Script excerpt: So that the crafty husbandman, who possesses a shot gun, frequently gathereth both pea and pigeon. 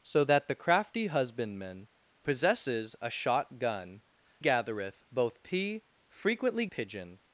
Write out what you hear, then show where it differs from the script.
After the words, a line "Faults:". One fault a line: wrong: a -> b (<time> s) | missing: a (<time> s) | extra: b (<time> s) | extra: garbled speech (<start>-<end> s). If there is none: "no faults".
So that the crafty husbandman, possesses a shot gun, gathereth both pea frequently pigeon.
Faults:
missing: who (1.9 s)
missing: frequently (4.0 s)
wrong: and -> frequently (6.1 s)